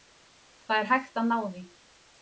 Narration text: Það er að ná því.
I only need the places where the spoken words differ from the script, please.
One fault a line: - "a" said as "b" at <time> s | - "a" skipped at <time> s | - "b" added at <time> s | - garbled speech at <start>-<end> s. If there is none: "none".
- "hægt" added at 0.9 s